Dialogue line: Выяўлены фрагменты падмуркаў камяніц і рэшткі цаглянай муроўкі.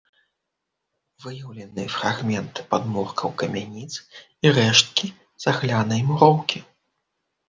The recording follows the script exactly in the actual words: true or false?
true